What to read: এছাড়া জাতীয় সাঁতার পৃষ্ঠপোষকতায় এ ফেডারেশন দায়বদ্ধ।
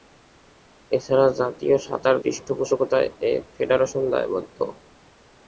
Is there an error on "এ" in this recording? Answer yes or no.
no